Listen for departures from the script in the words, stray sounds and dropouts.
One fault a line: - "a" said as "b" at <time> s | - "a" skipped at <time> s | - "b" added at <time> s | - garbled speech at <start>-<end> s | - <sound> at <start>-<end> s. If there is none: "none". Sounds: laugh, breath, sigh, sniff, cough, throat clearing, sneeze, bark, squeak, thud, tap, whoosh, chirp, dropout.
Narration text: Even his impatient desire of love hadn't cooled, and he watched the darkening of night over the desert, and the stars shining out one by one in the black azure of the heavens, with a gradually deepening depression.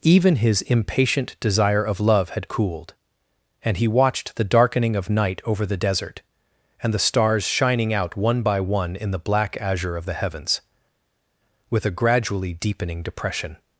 - "hadn't" said as "had" at 2.3 s